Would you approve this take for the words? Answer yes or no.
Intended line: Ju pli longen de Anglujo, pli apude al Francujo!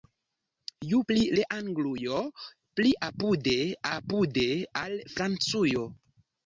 no